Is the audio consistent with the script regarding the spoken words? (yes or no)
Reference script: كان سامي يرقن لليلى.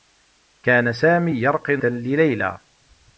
yes